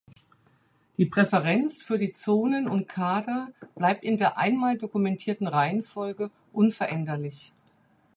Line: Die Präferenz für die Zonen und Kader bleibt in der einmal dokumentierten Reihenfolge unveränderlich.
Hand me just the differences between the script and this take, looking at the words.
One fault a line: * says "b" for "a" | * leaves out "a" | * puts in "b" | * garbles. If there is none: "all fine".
all fine